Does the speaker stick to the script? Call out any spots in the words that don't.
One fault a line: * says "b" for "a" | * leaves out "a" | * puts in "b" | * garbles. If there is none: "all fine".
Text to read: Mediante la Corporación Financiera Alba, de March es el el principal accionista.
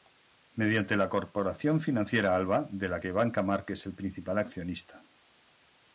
* puts in "la que Banca"
* leaves out "el"